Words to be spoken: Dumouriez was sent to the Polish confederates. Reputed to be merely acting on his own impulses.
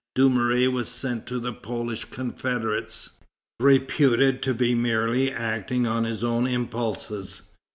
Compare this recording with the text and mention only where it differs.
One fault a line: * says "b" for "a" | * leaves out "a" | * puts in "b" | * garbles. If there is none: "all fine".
all fine